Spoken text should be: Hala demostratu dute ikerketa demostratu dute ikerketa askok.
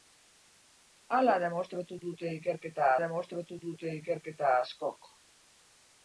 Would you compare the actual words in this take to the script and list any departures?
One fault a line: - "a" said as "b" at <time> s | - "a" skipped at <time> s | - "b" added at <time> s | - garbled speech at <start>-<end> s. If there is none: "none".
none